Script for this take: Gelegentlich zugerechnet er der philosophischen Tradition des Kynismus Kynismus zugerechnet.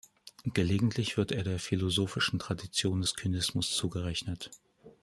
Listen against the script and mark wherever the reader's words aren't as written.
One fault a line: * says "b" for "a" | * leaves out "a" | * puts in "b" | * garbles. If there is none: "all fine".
* says "wird" for "zugerechnet"
* leaves out "Kynismus"